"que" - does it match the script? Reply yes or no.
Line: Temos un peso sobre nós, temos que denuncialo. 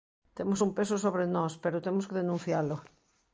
yes